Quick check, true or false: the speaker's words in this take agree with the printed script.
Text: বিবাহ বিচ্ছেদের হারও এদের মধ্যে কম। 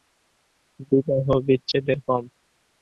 false